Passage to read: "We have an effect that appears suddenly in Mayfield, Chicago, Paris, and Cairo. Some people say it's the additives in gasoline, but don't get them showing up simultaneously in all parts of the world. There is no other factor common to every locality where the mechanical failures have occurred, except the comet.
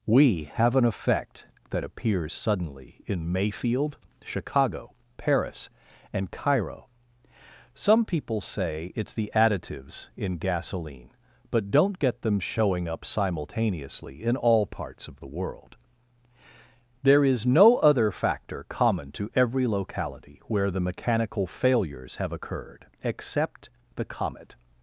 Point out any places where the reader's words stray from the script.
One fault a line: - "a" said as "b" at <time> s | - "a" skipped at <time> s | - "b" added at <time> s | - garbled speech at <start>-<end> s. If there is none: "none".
none